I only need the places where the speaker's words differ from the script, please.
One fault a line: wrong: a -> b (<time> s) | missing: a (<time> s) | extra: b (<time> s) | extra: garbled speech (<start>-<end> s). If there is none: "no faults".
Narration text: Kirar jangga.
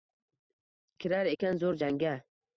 extra: ekan zo'r (1.3 s)